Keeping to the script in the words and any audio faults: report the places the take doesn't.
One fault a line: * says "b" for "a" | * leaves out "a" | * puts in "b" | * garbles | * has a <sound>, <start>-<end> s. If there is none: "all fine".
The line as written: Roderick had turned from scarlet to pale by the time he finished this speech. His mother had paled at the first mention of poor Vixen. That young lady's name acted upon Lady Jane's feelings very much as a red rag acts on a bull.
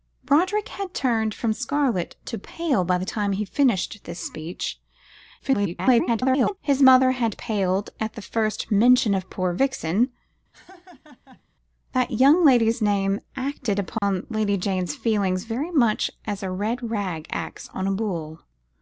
* garbles
* has a laugh, 10.5-11.4 s
* has a dropout, 14.0-14.0 s